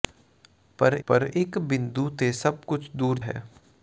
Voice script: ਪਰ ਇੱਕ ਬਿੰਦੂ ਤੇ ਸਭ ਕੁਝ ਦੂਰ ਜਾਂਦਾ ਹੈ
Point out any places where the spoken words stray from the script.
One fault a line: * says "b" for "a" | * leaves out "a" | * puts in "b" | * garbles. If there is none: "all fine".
* puts in "ਪਰ"
* leaves out "ਜਾਂਦਾ"